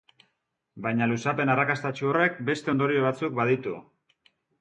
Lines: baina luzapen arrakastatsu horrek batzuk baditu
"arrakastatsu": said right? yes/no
yes